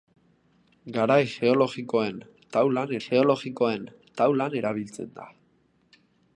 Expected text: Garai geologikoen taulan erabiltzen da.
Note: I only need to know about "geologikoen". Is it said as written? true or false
true